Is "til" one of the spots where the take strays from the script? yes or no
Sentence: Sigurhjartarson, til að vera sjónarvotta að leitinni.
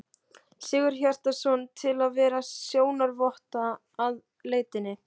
no